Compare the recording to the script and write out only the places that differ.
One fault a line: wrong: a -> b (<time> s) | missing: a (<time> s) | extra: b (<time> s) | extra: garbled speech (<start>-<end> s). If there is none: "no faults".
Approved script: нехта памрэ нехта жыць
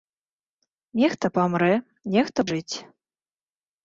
no faults